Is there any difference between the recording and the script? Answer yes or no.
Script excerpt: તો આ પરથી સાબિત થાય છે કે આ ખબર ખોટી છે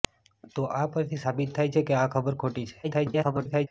yes